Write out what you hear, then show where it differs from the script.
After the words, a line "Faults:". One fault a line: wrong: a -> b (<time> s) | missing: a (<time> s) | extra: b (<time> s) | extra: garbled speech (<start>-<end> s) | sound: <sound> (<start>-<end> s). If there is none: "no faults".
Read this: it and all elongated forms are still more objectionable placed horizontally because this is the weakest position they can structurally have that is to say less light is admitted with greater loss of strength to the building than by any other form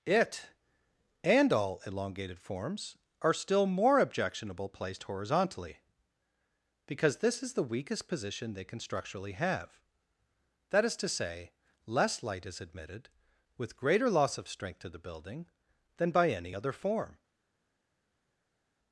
it and all elongated forms are still more objectionable placed horizontally because this is the weakest position they can structurally have that is to say less light is admitted with greater loss of strength to the building than by any other form
Faults:
no faults